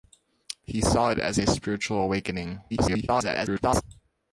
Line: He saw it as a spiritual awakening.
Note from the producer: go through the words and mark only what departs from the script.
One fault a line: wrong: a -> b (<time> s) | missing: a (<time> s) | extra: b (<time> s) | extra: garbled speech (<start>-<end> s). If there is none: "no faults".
extra: garbled speech (2.7-3.8 s)